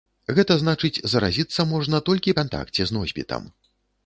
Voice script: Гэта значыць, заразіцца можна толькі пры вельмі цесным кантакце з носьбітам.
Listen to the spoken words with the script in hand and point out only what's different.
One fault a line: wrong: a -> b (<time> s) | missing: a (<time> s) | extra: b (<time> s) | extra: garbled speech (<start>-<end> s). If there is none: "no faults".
missing: пры вельмі цесным (2.4 s)